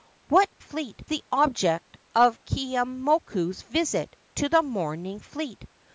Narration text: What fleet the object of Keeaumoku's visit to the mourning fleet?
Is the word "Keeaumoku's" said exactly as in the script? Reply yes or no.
yes